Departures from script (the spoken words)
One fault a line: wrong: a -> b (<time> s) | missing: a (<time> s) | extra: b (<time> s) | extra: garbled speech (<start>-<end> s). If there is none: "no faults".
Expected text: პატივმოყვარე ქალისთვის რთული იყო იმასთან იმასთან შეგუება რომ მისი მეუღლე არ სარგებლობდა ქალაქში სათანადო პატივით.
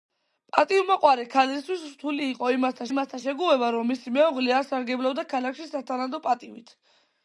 no faults